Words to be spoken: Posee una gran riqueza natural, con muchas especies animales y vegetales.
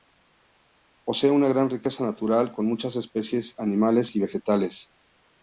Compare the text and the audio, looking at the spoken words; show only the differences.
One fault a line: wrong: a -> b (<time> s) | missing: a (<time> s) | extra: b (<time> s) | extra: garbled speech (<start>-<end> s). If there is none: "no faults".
no faults